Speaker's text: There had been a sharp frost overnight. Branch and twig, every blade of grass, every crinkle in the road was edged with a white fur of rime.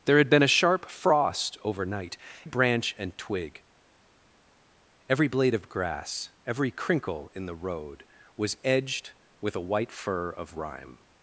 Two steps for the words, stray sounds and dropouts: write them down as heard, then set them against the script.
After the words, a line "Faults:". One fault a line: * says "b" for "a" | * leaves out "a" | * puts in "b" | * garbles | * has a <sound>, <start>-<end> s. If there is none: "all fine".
There had been a sharp frost overnight. Branch and twig, every blade of grass, every crinkle in the road was edged with a white fur of rime.
Faults:
all fine